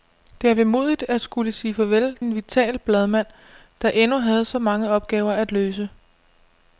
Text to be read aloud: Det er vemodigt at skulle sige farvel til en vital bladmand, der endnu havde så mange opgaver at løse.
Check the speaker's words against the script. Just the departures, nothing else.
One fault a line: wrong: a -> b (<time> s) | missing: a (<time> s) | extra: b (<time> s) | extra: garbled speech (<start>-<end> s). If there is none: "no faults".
missing: til (2.2 s)